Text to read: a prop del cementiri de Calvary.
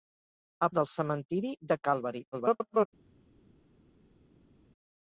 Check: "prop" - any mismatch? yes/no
yes